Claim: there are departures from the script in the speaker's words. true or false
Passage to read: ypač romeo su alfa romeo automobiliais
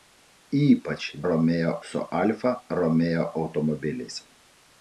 false